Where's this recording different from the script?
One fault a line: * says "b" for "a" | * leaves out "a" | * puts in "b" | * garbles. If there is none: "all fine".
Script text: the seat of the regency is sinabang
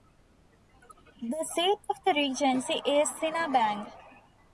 all fine